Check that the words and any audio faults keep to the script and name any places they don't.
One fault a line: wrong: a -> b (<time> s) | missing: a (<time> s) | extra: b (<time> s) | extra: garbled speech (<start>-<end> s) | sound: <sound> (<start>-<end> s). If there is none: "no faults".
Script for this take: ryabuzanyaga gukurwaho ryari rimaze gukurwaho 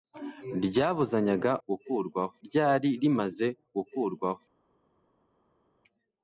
no faults